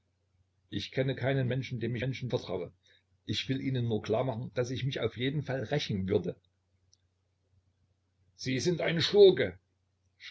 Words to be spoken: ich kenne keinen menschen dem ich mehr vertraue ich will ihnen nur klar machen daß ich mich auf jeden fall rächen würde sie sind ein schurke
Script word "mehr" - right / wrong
wrong